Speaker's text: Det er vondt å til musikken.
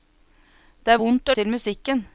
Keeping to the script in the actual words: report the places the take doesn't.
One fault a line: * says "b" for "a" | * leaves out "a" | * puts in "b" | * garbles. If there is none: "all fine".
all fine